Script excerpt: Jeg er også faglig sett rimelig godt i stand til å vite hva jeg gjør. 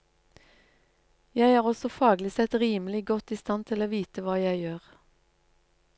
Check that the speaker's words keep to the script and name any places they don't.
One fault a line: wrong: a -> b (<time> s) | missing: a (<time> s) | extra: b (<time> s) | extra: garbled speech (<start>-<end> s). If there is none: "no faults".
no faults